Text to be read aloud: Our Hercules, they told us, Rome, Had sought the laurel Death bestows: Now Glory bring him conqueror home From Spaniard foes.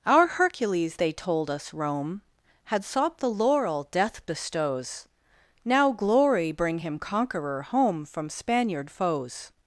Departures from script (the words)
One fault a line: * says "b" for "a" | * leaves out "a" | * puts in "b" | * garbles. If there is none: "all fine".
all fine